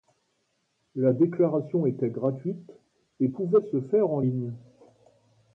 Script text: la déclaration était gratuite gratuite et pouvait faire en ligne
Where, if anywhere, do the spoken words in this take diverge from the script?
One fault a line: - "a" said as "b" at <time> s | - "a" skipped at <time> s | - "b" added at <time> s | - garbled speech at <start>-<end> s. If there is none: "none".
- "gratuite" skipped at 2.7 s
- "se" added at 3.7 s